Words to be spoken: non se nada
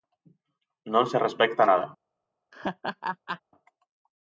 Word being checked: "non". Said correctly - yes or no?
yes